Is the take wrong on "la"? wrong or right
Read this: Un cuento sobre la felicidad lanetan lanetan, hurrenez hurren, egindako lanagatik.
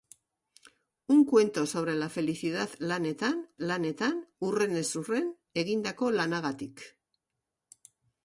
right